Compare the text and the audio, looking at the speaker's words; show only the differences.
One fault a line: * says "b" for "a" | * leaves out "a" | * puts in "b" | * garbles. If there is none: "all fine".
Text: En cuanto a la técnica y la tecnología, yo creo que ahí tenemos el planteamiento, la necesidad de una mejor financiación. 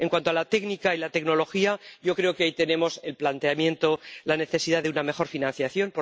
all fine